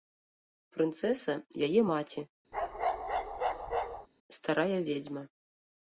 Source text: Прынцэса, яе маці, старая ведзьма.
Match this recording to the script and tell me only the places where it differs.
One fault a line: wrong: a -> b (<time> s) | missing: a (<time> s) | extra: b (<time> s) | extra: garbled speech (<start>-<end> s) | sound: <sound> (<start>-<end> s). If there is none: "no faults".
sound: bark (2.5-4.1 s)